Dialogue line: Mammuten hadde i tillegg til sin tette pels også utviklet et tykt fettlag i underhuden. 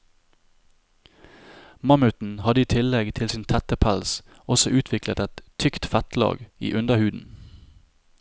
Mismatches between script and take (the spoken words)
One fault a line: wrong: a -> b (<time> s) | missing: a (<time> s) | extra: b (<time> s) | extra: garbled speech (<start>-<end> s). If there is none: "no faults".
no faults